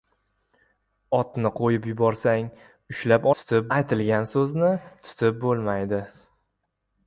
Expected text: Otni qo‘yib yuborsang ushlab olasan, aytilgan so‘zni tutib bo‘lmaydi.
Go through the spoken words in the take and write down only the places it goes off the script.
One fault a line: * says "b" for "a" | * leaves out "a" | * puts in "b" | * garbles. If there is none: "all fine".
* says "tutib" for "olasan"